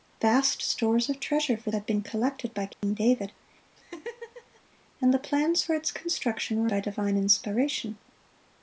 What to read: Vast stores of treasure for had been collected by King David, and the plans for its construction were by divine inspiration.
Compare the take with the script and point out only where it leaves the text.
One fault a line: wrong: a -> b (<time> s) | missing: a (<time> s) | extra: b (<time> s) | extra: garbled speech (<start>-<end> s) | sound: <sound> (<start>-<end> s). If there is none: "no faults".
sound: dropout (2.7-2.8 s)
sound: laugh (3.8-4.6 s)